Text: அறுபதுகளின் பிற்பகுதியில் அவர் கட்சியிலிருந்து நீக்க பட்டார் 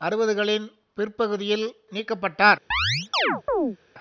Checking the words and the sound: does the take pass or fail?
fail